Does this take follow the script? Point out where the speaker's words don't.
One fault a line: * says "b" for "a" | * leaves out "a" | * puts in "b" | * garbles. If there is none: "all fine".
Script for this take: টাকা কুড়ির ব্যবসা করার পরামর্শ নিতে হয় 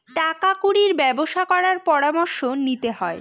all fine